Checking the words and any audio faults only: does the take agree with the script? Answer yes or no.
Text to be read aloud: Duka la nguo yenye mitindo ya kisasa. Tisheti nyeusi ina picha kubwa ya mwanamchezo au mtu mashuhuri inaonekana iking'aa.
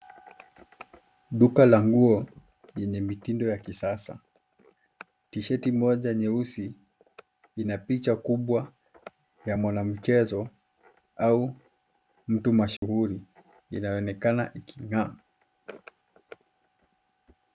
no